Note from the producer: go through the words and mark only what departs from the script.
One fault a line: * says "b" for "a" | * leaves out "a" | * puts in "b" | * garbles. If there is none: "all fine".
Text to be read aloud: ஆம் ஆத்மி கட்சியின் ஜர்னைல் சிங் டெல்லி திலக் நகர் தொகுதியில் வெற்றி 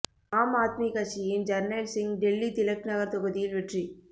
all fine